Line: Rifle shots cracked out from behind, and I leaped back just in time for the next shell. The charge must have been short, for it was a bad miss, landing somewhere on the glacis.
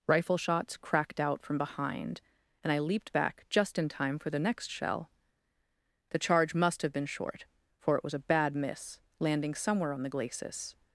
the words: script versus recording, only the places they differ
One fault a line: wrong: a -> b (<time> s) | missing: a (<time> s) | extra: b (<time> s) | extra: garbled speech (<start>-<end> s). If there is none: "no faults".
no faults